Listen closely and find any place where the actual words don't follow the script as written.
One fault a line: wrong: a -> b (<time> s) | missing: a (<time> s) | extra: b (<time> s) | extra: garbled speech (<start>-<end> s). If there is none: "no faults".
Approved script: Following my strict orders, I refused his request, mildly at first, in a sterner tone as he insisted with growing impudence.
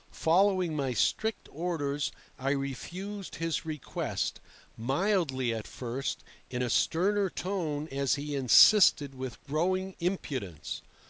no faults